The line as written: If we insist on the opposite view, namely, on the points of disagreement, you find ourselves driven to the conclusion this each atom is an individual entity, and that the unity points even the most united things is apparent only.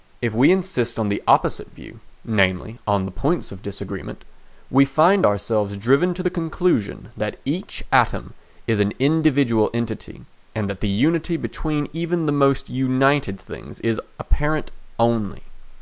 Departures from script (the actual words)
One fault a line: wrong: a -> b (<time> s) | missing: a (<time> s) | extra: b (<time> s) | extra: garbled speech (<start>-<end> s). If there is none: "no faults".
wrong: you -> we (4.7 s)
wrong: this -> that (7.2 s)
wrong: points -> between (11.4 s)